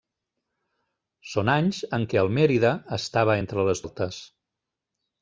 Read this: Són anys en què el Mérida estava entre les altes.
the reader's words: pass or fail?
pass